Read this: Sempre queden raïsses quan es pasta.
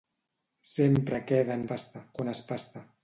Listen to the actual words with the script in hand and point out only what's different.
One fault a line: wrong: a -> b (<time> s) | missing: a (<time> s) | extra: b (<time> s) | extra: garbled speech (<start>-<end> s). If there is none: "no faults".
wrong: raïsses -> pasta (1.7 s)